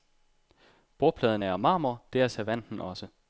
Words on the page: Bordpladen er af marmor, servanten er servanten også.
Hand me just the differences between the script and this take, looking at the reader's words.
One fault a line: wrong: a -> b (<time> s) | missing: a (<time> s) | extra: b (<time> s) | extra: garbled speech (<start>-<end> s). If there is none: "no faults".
wrong: servanten -> det (2.1 s)